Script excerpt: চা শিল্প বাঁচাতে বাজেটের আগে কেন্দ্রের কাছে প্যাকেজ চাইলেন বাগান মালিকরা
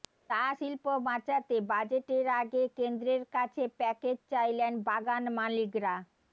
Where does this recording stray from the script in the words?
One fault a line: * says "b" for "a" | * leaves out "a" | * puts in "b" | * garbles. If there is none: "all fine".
all fine